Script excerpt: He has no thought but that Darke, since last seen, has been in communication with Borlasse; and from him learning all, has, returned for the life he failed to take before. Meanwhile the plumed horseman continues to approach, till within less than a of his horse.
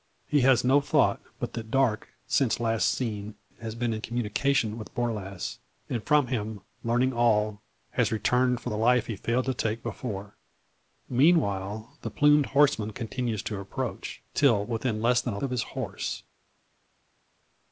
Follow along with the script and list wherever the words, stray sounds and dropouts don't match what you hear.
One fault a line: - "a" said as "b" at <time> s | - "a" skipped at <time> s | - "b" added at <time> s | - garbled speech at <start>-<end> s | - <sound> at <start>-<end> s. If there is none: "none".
none